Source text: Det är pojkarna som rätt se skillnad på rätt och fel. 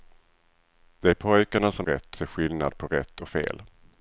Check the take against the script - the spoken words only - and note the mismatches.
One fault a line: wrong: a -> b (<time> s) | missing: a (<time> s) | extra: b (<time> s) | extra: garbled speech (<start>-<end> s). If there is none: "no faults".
no faults